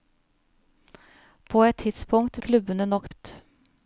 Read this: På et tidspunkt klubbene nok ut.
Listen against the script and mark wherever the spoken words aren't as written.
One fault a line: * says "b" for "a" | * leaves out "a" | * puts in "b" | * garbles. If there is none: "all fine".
all fine